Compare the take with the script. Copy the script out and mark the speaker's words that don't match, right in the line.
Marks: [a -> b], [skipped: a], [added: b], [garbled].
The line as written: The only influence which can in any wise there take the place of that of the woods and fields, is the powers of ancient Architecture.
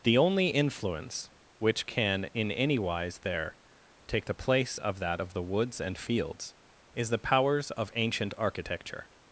The only influence which can in any wise there take the place of that of the woods and fields, is the powers of ancient Architecture.